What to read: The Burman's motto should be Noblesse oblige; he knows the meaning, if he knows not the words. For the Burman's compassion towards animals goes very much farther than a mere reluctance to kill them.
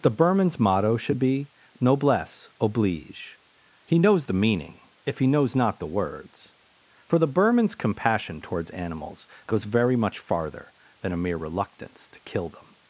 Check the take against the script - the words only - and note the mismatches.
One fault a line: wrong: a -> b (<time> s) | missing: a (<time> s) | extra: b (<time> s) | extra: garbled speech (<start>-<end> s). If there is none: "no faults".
no faults